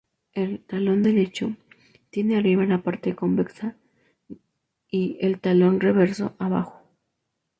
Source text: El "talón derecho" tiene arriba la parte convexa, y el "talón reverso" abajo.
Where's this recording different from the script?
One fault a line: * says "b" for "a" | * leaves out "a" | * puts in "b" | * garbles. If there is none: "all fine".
all fine